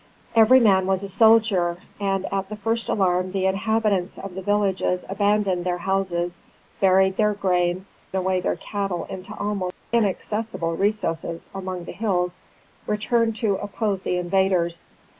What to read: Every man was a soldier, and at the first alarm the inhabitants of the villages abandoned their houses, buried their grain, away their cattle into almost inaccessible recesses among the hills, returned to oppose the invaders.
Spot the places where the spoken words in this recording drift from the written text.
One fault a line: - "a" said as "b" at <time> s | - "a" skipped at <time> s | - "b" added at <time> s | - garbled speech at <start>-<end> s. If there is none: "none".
none